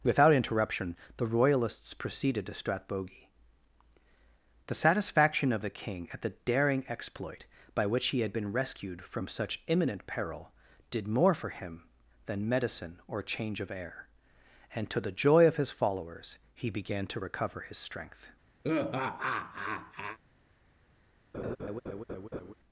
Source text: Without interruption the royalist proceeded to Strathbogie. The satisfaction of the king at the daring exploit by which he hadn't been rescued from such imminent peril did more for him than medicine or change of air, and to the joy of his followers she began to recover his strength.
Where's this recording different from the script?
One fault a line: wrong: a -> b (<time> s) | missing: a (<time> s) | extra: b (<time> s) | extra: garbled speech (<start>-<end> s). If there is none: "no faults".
wrong: royalist -> royalists (1.3 s)
wrong: hadn't -> had (8.2 s)
wrong: she -> he (16.5 s)